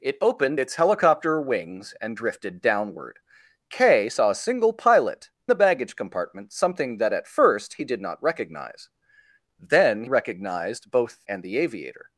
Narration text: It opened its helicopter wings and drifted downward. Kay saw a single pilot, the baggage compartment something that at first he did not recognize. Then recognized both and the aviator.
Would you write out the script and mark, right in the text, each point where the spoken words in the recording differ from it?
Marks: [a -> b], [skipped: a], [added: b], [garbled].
It opened its helicopter wings and drifted downward. Kay saw a single pilot, the baggage compartment something that at first he did not recognize. Then recognized both and the aviator.